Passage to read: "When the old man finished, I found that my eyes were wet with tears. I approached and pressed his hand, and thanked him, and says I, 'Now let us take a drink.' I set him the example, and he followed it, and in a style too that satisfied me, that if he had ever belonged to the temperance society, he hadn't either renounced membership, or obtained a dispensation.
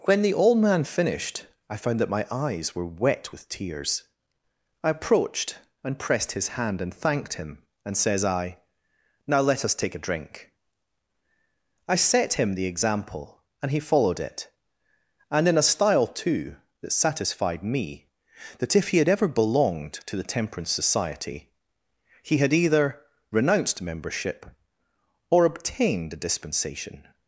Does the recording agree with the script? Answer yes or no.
no